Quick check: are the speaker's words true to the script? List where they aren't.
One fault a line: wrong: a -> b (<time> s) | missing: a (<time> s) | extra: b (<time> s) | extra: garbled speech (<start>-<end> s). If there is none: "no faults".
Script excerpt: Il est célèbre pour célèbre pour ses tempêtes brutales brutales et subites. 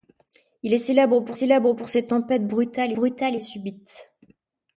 no faults